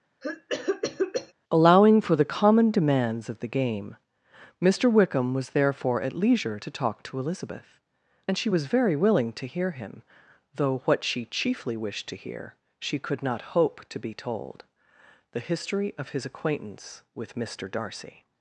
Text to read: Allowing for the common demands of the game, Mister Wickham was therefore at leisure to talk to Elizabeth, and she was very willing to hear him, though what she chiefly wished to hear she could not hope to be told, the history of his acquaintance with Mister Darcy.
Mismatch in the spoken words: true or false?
false